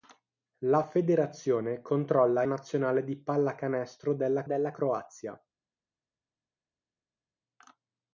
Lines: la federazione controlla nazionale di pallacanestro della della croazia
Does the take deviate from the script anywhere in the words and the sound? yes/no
no